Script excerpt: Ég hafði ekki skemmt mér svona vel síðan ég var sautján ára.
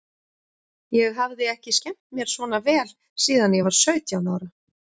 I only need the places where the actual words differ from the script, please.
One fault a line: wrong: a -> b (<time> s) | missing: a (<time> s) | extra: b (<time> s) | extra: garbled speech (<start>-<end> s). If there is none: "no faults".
no faults